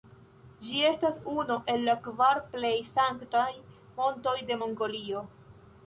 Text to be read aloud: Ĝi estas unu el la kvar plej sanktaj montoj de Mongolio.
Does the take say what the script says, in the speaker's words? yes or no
yes